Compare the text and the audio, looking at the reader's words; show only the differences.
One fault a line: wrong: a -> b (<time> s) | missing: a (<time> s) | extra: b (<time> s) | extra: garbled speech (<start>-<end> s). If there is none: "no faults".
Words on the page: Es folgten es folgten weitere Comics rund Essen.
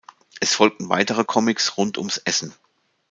missing: es folgten (0.9 s)
extra: ums (2.0 s)